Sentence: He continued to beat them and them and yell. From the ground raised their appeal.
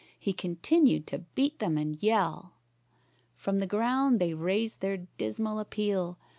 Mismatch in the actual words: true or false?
true